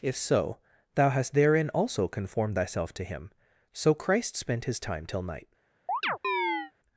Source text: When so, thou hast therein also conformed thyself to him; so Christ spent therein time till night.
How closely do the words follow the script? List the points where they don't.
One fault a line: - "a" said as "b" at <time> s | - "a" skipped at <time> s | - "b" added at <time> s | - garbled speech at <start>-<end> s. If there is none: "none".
- "When" said as "If" at 0.0 s
- "therein" said as "his" at 4.7 s